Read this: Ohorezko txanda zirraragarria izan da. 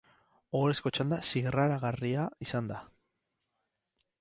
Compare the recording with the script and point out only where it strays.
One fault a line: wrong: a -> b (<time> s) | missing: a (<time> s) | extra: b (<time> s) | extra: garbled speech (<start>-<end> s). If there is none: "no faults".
no faults